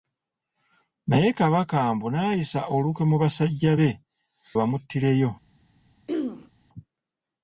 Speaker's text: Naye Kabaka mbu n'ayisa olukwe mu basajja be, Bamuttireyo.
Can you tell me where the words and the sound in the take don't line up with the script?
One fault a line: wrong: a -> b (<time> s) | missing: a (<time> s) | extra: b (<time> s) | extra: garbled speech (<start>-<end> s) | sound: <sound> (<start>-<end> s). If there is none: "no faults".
sound: throat clearing (6.1-6.5 s)